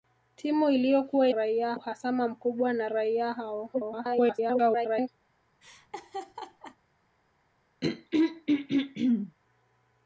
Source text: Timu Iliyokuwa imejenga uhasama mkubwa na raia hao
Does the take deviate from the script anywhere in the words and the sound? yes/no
yes